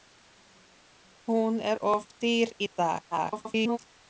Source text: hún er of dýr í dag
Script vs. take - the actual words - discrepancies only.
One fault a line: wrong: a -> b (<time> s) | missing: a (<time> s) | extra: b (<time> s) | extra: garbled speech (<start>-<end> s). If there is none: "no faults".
extra: garbled speech (3.1-3.8 s)